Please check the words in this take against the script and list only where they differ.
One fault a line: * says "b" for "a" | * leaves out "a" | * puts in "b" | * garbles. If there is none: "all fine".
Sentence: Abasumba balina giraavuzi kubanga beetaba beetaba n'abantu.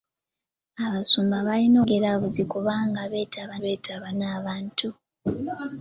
all fine